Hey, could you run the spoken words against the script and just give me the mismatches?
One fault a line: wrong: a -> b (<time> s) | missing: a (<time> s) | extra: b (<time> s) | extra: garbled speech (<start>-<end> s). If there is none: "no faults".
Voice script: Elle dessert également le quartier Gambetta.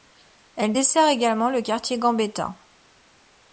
no faults